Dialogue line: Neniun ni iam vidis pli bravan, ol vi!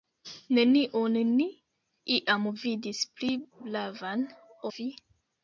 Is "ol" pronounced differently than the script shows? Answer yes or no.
yes